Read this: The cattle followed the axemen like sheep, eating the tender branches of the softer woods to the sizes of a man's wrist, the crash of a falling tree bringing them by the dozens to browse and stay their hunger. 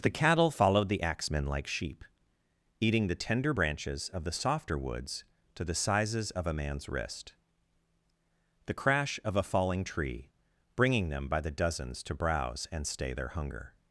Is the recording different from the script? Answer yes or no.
no